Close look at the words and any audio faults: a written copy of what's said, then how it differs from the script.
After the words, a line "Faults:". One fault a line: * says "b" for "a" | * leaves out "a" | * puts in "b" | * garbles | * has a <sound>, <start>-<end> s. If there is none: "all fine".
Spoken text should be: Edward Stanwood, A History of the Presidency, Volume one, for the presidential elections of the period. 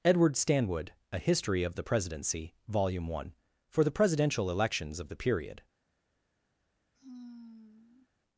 Edward Stanwood, A History of the Presidency, Volume one, for the presidential elections of the period.
Faults:
* has a sigh, 6.9-8.1 s